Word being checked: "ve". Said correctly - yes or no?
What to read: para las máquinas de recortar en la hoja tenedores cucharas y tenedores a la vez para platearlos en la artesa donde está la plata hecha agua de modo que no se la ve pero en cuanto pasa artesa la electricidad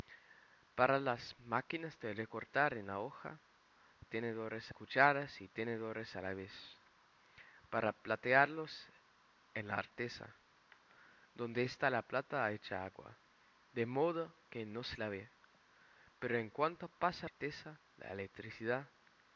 yes